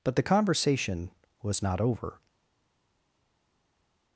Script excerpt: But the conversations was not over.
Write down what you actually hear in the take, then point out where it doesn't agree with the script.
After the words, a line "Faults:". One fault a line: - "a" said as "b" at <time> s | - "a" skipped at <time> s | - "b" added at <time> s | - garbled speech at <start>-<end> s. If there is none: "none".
But the conversation was not over.
Faults:
- "conversations" said as "conversation" at 0.2 s